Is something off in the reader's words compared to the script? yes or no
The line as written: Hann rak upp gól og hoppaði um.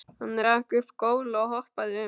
no